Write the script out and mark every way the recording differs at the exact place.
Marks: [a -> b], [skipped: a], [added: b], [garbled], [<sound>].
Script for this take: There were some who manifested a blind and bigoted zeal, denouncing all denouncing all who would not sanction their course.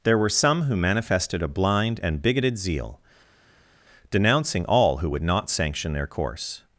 There were some who manifested a blind and bigoted zeal, denouncing all [skipped: denouncing all] who would not sanction their course.